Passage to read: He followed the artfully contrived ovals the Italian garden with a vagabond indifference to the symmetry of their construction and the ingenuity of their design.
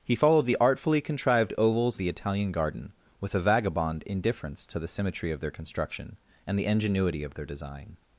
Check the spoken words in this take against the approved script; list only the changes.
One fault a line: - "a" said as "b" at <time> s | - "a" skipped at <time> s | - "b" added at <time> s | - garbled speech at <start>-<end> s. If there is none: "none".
none